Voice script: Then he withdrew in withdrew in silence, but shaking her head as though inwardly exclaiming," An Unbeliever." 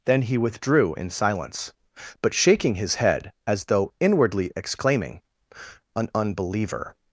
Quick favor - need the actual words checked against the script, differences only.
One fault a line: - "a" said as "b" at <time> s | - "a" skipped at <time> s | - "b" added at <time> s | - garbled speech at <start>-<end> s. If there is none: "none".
- "withdrew in" skipped at 1.1 s
- "her" said as "his" at 2.8 s